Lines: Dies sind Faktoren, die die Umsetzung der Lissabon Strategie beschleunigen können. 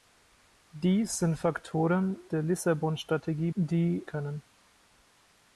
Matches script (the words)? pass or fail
fail